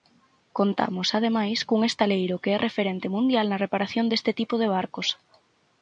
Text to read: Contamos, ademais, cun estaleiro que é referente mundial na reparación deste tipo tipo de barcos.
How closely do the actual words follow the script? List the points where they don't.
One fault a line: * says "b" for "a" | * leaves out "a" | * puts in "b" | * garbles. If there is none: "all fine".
* leaves out "tipo"